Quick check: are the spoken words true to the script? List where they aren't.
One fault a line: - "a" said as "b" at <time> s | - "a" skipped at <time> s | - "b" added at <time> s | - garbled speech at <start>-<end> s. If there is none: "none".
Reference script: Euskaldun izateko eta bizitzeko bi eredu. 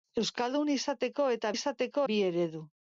- "bizitzeko" said as "izateko" at 1.5 s